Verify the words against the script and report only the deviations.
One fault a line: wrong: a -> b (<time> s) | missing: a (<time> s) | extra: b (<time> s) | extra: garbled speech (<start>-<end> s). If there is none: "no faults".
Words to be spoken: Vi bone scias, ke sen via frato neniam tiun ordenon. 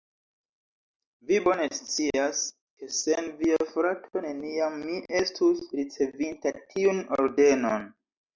extra: mi estus ricevinta (4.9 s)